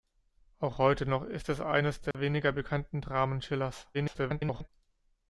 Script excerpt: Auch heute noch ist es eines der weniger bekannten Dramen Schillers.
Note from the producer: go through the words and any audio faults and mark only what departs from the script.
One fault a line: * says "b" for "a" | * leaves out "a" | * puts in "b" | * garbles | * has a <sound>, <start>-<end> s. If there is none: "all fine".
* has a dropout, 2.1-2.1 s
* garbles